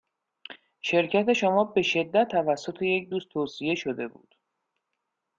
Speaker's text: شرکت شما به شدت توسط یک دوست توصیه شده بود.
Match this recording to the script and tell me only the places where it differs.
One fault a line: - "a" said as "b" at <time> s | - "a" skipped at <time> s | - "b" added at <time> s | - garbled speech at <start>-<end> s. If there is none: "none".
none